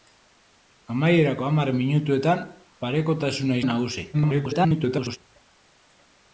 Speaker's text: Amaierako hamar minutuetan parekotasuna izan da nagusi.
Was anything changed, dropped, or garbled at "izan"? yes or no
yes